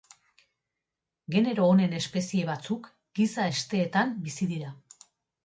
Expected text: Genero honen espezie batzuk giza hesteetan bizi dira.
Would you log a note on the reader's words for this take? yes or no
no